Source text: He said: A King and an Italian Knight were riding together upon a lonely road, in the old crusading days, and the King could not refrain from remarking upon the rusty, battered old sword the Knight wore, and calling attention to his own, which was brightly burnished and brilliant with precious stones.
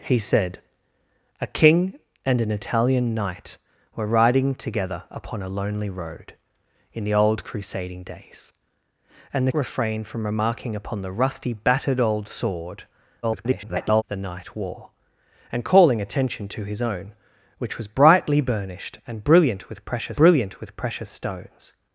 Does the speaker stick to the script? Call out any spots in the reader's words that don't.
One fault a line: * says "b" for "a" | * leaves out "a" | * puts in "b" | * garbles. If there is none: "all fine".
* leaves out "King could not"
* garbles
* puts in "brilliant with precious"